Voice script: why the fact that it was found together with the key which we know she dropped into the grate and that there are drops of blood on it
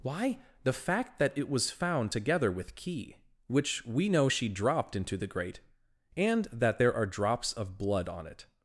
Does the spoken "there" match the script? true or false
true